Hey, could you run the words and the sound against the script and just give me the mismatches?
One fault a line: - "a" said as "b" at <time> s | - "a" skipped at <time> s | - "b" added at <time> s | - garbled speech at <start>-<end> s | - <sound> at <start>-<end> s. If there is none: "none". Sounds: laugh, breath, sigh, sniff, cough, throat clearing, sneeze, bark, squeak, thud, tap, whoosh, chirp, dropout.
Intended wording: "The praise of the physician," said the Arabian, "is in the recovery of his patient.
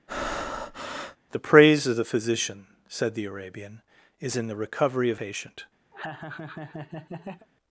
- breath at 0.1-1.2 s
- "his" skipped at 5.2 s
- laugh at 5.9-7.5 s